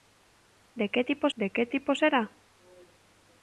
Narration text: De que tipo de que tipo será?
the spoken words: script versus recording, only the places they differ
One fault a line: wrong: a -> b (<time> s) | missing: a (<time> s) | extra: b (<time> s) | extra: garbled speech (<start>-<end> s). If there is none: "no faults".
no faults